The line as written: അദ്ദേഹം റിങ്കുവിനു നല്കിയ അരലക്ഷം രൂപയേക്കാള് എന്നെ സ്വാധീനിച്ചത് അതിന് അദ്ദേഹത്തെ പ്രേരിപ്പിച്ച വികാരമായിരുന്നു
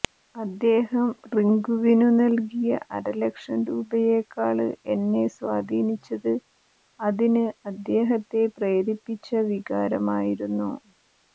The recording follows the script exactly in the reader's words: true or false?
true